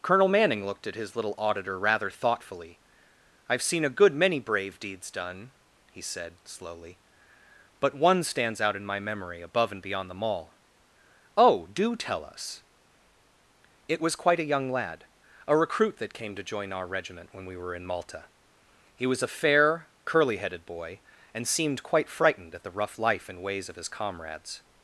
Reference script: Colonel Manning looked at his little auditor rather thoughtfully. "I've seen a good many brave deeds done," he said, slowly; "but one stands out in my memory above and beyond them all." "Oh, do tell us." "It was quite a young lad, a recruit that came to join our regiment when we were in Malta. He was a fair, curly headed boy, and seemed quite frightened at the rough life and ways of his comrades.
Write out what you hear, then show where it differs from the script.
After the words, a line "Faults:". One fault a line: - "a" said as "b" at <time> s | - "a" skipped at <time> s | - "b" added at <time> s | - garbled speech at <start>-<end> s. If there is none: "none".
Colonel Manning looked at his little auditor rather thoughtfully. "I've seen a good many brave deeds done," he said, slowly; "but one stands out in my memory above and beyond them all." "Oh, do tell us." "It was quite a young lad, a recruit that came to join our regiment when we were in Malta. He was a fair, curly headed boy, and seemed quite frightened at the rough life and ways of his comrades.
Faults:
none